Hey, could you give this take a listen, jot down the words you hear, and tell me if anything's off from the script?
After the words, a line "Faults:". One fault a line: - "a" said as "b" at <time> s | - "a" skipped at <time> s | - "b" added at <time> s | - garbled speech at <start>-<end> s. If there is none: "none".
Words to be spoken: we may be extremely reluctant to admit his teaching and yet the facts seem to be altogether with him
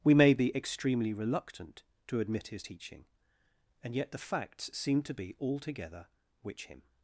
we may be extremely reluctant to admit his teaching and yet the facts seem to be altogether which him
Faults:
- "with" said as "which" at 6.4 s